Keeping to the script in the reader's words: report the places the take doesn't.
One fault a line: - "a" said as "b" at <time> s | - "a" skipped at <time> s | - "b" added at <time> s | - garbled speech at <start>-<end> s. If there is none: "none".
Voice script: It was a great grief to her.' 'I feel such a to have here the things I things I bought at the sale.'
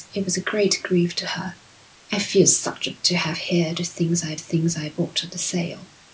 none